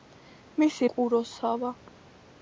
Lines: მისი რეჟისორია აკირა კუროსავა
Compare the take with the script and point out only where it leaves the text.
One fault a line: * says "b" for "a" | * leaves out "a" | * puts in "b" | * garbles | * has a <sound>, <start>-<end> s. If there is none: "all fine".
* leaves out "რეჟისორია აკირა"